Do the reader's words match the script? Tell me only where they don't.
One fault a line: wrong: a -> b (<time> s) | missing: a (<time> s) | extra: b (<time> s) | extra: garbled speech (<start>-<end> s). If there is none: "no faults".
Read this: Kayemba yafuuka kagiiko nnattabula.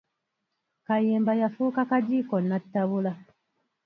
no faults